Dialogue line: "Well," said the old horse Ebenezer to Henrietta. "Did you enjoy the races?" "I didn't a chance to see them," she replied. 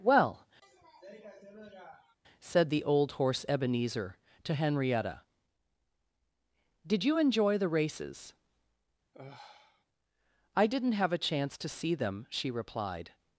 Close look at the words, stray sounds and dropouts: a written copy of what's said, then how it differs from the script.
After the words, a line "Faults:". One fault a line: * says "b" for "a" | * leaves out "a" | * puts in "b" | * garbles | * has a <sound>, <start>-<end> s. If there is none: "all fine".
"Well," said the old horse Ebenezer to Henrietta. "Did you enjoy the races?" "I didn't have a chance to see them," she replied.
Faults:
* has a sniff, 0.6-2.2 s
* has a sigh, 9.1-9.9 s
* puts in "have"